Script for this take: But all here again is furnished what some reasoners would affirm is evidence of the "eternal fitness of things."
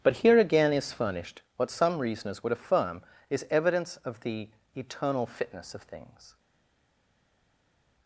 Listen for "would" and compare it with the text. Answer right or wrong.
right